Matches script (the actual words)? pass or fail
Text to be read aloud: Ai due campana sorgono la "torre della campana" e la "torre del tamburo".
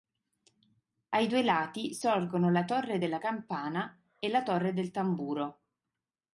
fail